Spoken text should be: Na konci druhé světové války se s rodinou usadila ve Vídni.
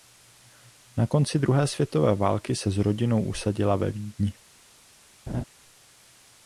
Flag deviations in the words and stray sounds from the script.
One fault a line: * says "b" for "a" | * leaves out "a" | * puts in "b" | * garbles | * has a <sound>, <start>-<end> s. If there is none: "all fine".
* has a laugh, 5.3-5.4 s